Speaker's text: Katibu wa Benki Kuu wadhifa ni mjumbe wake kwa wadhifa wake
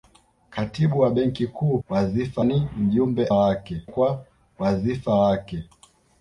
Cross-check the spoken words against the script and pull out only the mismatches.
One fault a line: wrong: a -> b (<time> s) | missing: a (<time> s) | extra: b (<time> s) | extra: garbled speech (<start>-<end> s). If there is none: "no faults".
no faults